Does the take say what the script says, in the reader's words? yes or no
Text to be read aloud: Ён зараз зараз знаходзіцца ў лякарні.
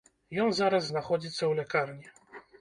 no